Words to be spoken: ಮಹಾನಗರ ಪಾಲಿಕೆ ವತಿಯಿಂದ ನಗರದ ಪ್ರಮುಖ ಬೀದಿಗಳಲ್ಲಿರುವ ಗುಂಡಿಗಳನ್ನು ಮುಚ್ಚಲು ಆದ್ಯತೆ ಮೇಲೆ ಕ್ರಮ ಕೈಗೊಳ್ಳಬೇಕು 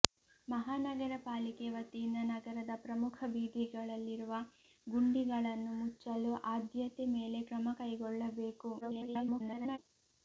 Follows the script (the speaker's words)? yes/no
no